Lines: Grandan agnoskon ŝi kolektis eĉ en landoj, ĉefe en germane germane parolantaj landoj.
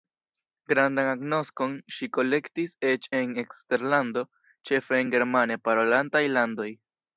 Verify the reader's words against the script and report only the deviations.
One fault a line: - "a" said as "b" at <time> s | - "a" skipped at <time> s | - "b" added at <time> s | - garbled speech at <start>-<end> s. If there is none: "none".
- "landoj" said as "eksterlando" at 3.5 s
- "germane" skipped at 5.6 s